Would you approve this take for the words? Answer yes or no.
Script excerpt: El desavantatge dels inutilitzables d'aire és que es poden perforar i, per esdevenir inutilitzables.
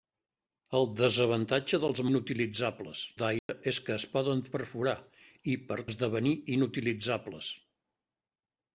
yes